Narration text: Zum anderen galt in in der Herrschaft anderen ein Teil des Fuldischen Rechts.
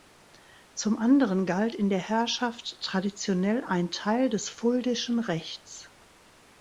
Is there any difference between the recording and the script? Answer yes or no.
yes